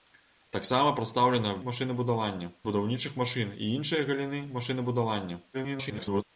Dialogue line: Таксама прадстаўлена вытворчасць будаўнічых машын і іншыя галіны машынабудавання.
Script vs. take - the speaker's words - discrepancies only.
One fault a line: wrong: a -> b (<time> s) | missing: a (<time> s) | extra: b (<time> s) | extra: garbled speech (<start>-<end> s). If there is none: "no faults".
wrong: вытворчасць -> машынабудавання (1.7 s)
extra: garbled speech (5.5-6.2 s)